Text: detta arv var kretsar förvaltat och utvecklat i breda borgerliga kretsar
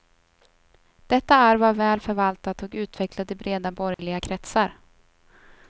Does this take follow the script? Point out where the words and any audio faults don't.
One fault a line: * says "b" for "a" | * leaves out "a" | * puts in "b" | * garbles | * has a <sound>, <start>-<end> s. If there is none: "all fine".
* says "väl" for "kretsar"
* has a dropout, 3.9-4.0 s